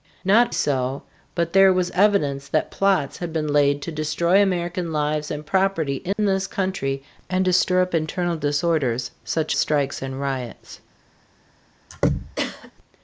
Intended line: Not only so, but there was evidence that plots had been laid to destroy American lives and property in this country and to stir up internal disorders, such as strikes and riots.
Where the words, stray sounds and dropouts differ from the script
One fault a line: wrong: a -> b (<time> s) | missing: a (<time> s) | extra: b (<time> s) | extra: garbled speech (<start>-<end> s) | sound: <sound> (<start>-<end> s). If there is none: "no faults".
missing: only (0.5 s)
sound: dropout (6.1-6.2 s)
missing: as (9.6 s)
sound: throat clearing (11.9-12.7 s)